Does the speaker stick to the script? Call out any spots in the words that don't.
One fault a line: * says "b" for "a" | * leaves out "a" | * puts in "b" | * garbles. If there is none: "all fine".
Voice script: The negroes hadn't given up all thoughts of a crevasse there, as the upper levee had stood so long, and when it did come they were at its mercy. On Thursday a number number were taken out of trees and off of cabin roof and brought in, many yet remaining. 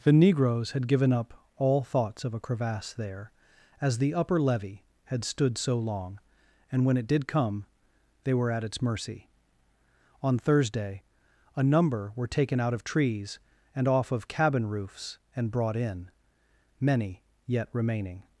* says "had" for "hadn't"
* leaves out "number"
* says "roofs" for "roof"